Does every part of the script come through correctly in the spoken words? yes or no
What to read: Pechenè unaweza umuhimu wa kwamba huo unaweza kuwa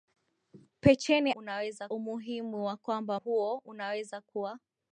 yes